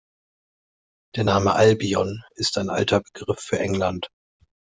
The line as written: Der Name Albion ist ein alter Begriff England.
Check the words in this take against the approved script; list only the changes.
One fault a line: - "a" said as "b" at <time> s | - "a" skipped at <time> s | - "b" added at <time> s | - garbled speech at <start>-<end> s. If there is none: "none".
- "für" added at 3.4 s